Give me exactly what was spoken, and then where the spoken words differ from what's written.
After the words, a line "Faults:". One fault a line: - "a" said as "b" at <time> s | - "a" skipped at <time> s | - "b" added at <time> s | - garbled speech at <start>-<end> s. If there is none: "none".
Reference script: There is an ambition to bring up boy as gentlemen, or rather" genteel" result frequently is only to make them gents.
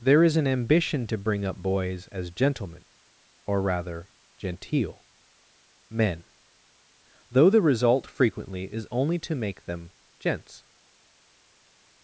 There is an ambition to bring up boys as gentlemen, or rather" genteel" men, though the result frequently is only to make them gents.
Faults:
- "boy" said as "boys" at 1.6 s
- "men though the" added at 5.9 s